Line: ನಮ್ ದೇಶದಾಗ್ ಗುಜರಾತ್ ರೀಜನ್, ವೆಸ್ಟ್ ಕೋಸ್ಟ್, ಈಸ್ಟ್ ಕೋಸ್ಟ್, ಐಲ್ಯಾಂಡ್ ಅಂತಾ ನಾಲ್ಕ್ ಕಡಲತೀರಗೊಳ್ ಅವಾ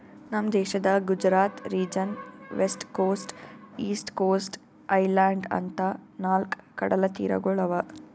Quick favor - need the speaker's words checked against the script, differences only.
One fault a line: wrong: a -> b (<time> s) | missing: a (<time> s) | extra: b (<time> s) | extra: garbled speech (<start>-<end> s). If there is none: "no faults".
no faults